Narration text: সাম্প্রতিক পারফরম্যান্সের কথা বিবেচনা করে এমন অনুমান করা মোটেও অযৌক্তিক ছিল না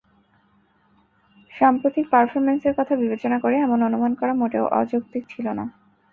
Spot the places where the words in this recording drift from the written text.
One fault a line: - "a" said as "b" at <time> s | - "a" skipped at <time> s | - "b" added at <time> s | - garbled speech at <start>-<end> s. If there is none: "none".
none